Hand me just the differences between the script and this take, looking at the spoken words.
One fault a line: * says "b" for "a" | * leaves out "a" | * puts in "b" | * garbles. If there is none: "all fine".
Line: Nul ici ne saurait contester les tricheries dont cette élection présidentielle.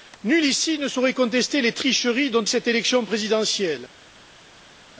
all fine